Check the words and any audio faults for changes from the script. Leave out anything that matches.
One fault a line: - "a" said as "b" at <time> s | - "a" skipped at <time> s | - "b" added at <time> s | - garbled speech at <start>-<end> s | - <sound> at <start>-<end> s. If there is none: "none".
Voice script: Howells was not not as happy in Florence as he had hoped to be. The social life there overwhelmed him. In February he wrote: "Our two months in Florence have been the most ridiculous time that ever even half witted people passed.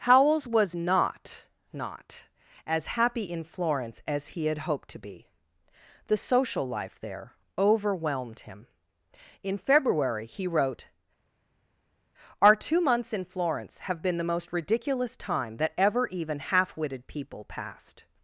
none